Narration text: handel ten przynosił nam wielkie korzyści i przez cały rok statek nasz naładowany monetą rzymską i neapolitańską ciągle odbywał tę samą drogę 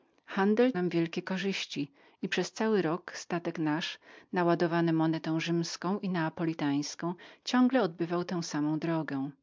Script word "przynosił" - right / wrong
wrong